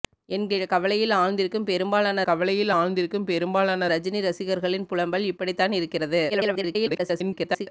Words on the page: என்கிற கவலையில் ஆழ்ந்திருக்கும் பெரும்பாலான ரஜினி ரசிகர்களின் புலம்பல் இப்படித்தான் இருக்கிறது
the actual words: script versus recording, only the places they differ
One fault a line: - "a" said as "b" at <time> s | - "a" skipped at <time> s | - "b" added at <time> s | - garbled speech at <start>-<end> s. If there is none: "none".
- "கவலையில் ஆழ்ந்திருக்கும் பெரும்பாலான" added at 2.2 s
- garbled speech at 6.3-7.7 s